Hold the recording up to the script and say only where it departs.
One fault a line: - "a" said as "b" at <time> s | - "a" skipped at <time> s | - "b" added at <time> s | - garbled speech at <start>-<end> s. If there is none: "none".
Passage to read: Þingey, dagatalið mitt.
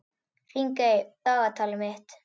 none